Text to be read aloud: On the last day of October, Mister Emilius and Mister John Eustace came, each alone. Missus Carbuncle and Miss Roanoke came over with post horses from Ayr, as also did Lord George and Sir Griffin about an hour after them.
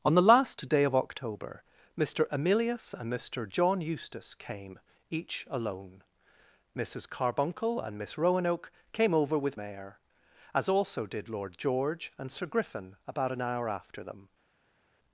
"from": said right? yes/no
no